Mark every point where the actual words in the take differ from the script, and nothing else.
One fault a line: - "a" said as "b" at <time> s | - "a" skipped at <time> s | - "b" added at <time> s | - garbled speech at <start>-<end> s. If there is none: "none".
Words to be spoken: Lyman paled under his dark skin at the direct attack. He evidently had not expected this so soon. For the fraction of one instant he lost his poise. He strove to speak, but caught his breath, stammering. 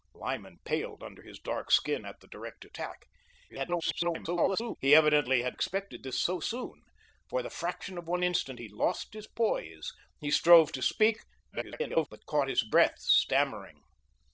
- garbled speech at 3.5-4.8 s
- "not" skipped at 5.6 s
- garbled speech at 11.5-12.1 s